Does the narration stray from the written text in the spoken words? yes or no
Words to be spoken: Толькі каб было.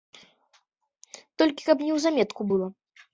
yes